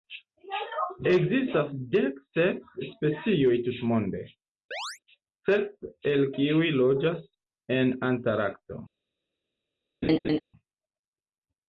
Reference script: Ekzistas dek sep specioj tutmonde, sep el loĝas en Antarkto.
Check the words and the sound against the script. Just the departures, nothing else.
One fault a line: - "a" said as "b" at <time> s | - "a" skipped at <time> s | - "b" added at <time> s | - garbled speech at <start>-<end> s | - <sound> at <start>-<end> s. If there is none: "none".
- chirp at 4.7-5.0 s
- "kiuj" added at 6.4 s
- laugh at 10.0-10.4 s